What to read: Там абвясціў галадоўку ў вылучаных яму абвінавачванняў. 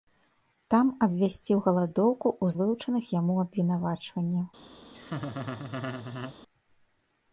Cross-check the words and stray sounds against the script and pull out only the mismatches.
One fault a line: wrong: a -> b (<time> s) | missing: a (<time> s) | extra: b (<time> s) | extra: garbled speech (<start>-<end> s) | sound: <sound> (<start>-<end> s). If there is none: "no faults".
sound: laugh (4.9-6.4 s)